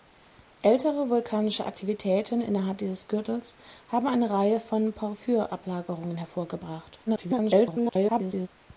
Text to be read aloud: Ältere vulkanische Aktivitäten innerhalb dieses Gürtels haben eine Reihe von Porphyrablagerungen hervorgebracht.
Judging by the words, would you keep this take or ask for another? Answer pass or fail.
fail